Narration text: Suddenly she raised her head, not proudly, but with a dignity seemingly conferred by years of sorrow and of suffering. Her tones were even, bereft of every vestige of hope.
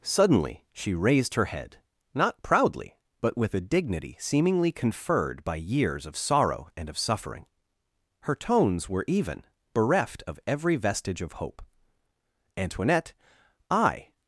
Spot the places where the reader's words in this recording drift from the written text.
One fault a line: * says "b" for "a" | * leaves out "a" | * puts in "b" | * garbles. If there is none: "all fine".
* puts in "Antoinette I"